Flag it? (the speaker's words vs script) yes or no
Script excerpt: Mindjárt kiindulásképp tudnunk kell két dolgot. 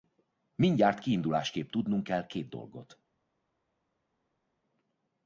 no